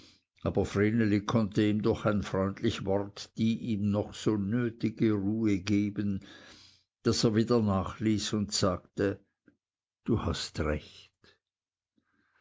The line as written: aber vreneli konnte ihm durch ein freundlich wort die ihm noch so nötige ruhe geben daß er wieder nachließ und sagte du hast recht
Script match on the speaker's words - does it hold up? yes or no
yes